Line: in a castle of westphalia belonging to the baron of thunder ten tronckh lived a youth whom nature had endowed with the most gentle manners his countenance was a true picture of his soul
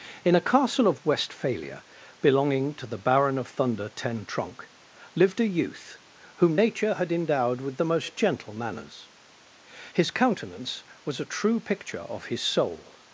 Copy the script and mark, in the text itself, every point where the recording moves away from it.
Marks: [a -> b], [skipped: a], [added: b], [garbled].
in a castle of westphalia belonging to the baron of thunder ten tronckh lived a youth whom nature had endowed with the most gentle manners his countenance was a true picture of his soul